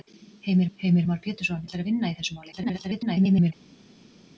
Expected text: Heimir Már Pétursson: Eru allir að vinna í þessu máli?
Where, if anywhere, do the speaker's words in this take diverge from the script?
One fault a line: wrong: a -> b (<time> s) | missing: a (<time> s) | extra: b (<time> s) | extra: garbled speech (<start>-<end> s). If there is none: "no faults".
extra: heimir (0.8 s)
missing: Eru (1.7 s)
extra: garbled speech (2.5-3.5 s)